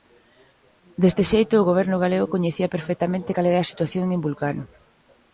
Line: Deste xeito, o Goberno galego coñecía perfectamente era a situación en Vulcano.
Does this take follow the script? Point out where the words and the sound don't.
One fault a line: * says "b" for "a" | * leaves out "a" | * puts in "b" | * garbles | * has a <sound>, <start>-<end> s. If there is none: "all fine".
* puts in "cal"